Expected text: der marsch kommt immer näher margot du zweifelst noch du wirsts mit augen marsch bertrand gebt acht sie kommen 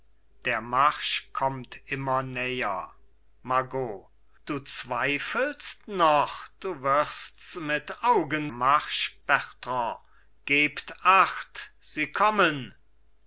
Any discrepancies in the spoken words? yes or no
no